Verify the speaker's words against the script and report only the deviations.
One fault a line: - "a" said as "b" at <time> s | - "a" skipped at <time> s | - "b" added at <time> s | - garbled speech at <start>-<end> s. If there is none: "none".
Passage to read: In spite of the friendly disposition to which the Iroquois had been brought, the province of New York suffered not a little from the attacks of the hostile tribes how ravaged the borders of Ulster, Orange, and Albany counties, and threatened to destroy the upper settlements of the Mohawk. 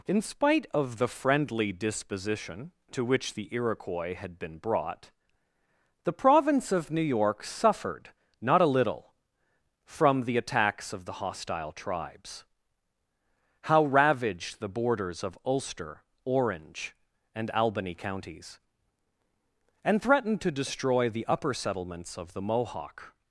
none